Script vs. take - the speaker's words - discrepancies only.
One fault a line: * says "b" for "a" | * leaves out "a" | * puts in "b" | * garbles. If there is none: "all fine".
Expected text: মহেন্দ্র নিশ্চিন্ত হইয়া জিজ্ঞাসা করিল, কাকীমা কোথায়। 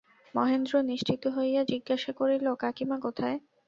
all fine